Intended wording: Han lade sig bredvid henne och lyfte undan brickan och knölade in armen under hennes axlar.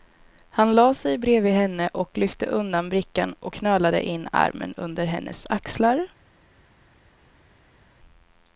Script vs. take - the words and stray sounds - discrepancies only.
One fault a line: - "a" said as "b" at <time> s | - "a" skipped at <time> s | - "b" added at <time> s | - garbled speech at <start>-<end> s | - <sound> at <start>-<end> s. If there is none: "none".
none